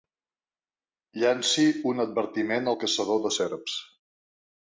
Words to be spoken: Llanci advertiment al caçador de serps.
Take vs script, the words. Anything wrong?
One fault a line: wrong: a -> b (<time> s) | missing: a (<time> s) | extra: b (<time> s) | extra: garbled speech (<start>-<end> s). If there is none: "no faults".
extra: un (1.9 s)